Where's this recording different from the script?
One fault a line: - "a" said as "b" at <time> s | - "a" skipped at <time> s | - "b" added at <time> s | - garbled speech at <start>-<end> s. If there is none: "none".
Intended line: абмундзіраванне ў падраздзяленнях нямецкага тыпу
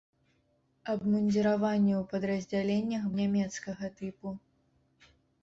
none